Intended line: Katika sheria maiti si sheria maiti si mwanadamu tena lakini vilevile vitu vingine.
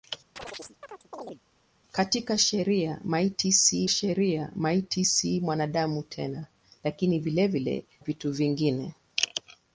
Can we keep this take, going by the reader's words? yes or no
yes